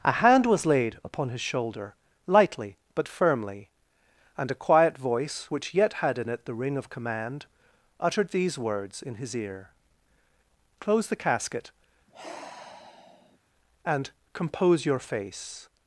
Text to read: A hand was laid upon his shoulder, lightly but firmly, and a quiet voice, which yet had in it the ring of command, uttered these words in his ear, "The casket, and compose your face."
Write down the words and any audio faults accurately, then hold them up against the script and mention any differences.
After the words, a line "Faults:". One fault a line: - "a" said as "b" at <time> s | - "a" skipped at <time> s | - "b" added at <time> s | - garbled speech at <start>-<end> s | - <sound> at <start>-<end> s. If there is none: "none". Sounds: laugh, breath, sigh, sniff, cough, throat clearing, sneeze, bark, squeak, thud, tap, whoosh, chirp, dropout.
A hand was laid upon his shoulder, lightly but firmly, and a quiet voice, which yet had in it the ring of command, uttered these words in his ear, "Close the casket, and compose your face."
Faults:
- "Close" added at 10.8 s
- sigh at 12.1-13.4 s